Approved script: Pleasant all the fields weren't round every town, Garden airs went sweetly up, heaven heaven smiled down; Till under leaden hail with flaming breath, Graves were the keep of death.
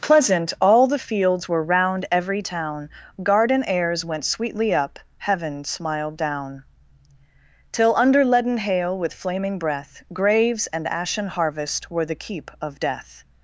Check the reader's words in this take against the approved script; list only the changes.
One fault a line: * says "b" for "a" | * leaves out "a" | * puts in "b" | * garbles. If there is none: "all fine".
* says "were" for "weren't"
* leaves out "heaven"
* puts in "and ashen harvest"